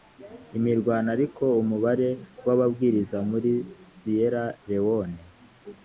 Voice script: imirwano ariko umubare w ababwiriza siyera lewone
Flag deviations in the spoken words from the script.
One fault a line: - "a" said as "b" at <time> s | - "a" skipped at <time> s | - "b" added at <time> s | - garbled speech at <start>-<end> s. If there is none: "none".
- "muri" added at 3.3 s